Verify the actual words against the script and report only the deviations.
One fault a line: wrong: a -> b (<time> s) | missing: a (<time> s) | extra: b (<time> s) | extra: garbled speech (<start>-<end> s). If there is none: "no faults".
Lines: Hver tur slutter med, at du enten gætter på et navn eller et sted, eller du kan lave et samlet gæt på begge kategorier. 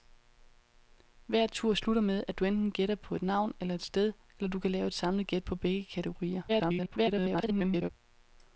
extra: garbled speech (6.5-7.9 s)